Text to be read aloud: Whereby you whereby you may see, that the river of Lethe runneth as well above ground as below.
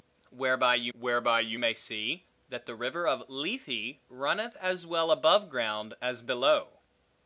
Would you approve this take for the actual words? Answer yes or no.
yes